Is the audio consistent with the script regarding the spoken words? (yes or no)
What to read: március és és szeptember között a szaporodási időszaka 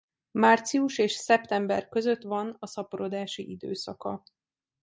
no